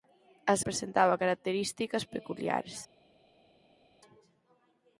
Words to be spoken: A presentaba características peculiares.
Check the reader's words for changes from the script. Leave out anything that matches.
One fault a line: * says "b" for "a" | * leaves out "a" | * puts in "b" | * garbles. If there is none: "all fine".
all fine